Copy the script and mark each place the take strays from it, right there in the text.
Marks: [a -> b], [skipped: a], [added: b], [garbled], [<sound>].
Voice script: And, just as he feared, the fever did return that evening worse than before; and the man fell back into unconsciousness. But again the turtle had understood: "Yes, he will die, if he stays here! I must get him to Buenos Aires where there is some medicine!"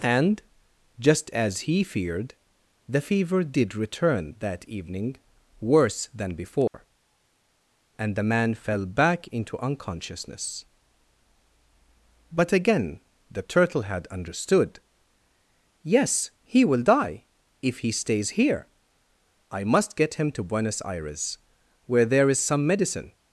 And, just as he feared, the fever did return that evening worse than before; [dropout] and the man fell back into unconsciousness. But again the turtle had understood: "Yes, he will die, if he stays here! I must get him to Buenos Aires where there is some medicine!"